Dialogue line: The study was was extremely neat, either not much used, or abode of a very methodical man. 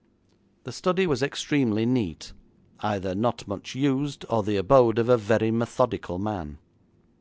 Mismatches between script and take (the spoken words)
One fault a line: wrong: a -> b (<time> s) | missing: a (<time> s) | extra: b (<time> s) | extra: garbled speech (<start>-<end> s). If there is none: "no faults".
missing: was (1.2 s)
extra: the (4.4 s)